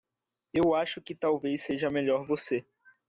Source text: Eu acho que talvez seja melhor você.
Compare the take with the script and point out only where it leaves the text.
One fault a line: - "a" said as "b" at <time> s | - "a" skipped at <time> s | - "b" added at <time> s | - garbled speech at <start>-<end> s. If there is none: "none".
none